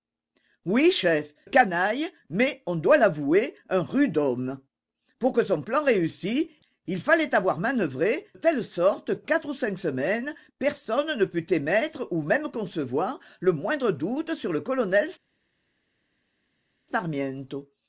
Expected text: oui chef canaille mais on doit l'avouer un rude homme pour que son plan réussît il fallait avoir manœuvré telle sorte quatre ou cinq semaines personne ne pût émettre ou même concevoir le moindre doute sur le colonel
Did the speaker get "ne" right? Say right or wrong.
right